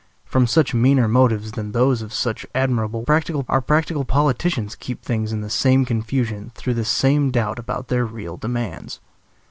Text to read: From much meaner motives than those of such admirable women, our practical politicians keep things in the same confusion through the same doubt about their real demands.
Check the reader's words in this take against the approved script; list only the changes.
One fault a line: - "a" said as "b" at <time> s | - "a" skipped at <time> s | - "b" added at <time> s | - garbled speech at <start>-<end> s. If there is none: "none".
- "women" said as "practical" at 3.0 s